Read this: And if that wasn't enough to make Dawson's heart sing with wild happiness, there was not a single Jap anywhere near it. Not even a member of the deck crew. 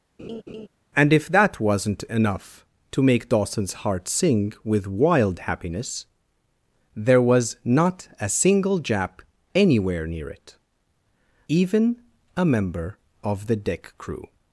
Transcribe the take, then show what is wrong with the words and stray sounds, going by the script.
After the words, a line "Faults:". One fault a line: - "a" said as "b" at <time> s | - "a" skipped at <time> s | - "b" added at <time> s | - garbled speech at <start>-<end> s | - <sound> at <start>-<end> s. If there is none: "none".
And if that wasn't enough to make Dawson's heart sing with wild happiness, there was not a single Jap anywhere near it. Even a member of the deck crew.
Faults:
- laugh at 0.2-0.7 s
- "Not" skipped at 10.6 s